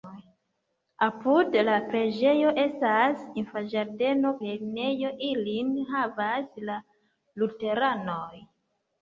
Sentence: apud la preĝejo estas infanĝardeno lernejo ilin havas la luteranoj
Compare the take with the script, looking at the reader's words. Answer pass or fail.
pass